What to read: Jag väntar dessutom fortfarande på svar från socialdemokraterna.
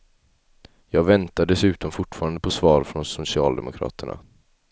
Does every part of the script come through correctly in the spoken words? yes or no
yes